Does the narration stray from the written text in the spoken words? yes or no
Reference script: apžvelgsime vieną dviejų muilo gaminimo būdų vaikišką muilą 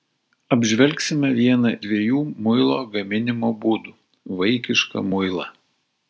no